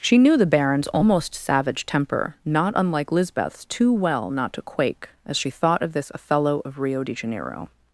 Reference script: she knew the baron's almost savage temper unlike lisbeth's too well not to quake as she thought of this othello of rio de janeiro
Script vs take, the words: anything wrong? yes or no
yes